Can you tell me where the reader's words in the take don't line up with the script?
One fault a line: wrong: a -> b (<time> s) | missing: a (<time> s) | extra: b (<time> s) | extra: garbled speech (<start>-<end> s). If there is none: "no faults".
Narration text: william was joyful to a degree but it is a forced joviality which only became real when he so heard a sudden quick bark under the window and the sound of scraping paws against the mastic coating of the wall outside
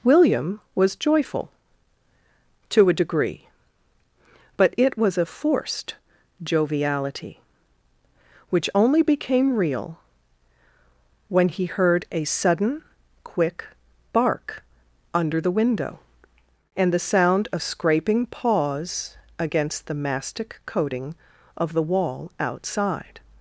wrong: is -> was (5.0 s)
missing: so (11.7 s)